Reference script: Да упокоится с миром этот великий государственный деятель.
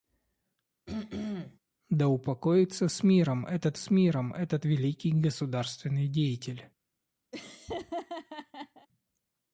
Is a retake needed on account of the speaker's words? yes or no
yes